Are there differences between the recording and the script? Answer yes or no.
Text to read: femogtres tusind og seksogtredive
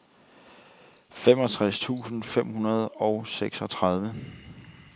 yes